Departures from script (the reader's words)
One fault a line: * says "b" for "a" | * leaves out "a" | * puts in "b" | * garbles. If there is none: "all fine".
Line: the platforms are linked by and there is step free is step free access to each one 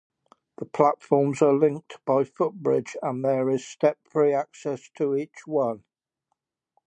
* puts in "footbridge"
* leaves out "is step free"